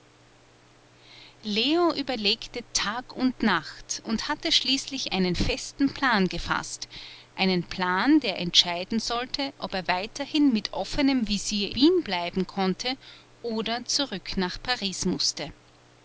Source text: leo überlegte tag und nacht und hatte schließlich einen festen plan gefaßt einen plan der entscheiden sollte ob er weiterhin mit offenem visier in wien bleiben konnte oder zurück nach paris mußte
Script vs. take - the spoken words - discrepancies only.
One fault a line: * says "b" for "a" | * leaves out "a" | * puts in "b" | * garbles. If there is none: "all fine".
* leaves out "in"